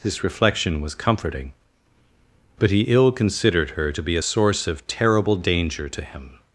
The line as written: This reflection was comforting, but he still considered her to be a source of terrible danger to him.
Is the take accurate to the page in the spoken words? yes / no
no